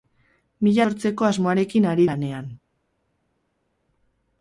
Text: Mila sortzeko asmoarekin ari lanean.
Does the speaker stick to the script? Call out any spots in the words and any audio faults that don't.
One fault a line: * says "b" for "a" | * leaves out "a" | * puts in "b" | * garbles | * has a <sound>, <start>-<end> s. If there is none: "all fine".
all fine